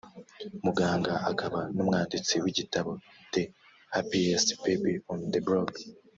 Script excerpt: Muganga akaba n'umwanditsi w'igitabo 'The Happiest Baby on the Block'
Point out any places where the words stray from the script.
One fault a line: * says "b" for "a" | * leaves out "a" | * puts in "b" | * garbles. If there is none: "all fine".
all fine